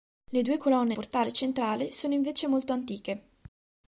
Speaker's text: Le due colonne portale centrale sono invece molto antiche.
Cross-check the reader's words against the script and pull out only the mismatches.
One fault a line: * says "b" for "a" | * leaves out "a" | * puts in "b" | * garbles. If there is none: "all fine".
all fine